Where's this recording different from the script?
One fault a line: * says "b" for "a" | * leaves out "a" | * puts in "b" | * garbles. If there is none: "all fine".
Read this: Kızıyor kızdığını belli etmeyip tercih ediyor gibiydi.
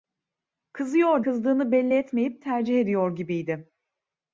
all fine